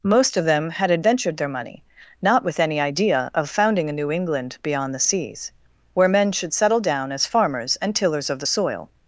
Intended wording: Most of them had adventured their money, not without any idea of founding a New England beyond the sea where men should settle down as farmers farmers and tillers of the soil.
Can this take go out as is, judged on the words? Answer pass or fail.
fail